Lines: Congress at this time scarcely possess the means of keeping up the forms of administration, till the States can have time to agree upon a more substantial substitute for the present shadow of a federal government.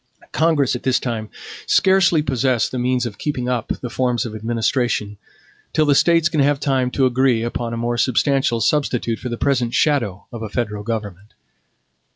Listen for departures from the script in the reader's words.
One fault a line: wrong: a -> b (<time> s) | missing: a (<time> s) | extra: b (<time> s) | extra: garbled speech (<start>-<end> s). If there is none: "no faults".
no faults